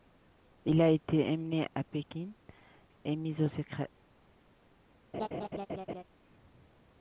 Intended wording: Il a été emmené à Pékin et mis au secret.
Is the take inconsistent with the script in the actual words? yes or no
no